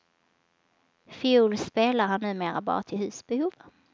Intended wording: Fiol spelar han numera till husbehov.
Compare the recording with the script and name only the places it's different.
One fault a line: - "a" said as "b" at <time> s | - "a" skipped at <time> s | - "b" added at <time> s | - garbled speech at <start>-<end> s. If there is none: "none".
- "bara" added at 2.6 s